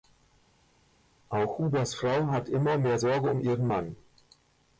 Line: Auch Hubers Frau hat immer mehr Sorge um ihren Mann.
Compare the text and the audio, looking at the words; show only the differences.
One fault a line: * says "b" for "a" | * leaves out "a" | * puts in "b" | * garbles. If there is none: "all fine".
all fine